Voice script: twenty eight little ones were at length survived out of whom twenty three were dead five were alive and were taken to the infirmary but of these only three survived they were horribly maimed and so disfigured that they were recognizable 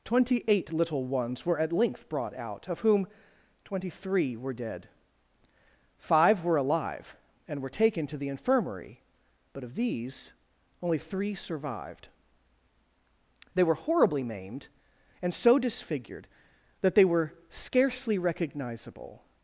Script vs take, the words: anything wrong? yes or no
yes